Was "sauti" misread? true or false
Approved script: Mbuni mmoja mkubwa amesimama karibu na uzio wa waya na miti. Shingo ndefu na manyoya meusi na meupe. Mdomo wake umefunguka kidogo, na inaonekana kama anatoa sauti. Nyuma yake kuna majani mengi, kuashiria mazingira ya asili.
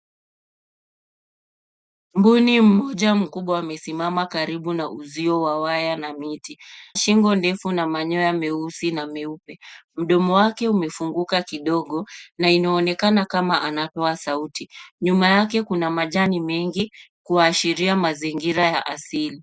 false